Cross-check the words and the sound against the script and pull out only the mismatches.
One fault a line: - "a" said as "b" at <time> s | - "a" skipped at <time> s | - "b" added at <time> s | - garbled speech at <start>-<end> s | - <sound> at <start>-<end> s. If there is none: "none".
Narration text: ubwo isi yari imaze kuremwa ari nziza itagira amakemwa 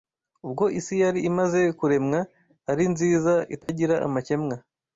- dropout at 3.6-3.7 s